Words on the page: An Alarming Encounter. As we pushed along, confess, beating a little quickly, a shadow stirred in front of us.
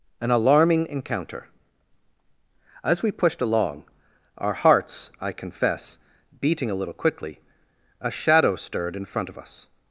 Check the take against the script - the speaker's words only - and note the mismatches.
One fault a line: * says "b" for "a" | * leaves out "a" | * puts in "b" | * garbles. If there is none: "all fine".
* puts in "our hearts I"